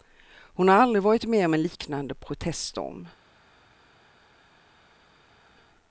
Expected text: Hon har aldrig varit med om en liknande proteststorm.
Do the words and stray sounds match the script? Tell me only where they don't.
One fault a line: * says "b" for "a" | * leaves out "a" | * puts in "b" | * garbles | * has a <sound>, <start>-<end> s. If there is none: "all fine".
all fine